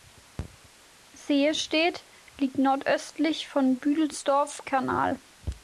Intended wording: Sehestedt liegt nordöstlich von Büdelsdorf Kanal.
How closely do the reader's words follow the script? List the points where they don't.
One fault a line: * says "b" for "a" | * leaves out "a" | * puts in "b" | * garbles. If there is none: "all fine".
all fine